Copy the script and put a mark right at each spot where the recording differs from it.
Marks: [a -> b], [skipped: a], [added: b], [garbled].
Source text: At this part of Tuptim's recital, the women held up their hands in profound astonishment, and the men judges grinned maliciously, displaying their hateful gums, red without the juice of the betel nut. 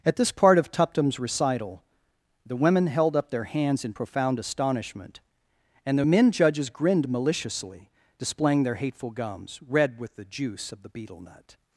At this part of Tuptim's recital, the women held up their hands in profound astonishment, and the men judges grinned maliciously, displaying their hateful gums, red [without -> with] the juice of the betel nut.